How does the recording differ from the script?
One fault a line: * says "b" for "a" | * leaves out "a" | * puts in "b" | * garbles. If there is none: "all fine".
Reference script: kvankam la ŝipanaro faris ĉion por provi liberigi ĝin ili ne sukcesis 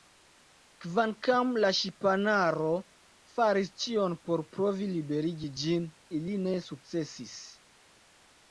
all fine